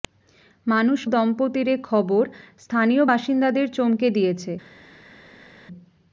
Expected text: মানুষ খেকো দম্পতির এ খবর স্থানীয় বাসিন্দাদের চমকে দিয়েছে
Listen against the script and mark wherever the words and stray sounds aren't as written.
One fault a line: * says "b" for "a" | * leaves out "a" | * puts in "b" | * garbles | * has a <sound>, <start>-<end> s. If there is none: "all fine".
* leaves out "খেকো"